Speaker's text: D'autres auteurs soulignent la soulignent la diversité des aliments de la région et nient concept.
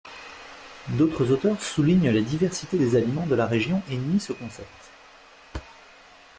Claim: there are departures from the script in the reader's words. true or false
true